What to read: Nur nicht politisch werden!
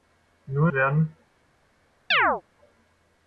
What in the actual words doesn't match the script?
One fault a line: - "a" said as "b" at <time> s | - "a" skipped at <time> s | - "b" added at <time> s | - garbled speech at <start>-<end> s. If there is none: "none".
- "nicht politisch" skipped at 0.7 s